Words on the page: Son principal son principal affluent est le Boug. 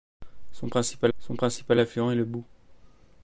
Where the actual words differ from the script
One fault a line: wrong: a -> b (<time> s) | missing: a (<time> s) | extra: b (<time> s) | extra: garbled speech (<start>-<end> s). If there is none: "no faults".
no faults